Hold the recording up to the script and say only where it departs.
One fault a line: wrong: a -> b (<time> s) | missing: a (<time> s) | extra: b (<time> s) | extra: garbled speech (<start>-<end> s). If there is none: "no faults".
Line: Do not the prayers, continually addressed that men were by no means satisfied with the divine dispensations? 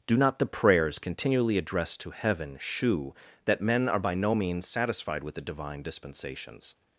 extra: to heaven shew (2.0 s)
wrong: were -> are (3.9 s)